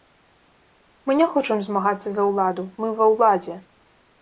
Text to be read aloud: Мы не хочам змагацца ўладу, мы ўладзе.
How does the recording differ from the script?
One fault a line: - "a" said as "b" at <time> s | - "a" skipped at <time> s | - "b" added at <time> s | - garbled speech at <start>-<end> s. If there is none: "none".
- "за" added at 2.2 s
- "ва" added at 3.0 s